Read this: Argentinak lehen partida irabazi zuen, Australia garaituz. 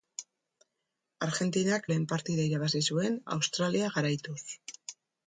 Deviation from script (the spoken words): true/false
false